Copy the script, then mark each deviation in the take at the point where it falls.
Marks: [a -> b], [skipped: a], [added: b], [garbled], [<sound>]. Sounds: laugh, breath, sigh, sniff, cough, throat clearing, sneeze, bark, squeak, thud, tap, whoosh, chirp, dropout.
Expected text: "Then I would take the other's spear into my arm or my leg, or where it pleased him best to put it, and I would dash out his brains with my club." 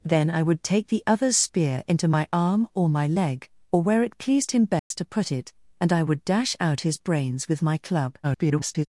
"Then I would take the other's spear into my arm or my leg, or where it pleased him best [dropout] to put it, and I would dash out his brains with my club." [garbled]